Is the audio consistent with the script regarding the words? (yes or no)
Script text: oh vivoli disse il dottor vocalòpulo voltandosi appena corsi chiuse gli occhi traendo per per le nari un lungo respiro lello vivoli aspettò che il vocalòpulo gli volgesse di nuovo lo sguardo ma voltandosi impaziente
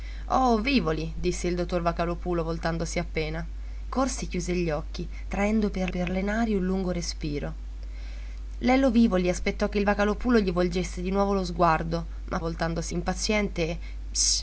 yes